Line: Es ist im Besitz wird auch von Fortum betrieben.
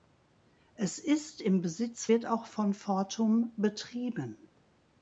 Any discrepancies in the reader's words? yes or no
no